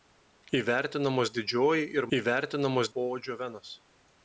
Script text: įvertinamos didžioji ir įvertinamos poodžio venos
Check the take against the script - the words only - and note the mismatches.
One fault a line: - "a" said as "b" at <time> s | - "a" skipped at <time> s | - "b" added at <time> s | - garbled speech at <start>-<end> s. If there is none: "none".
none